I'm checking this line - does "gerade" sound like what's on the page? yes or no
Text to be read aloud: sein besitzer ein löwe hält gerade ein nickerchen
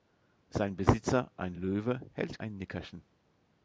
no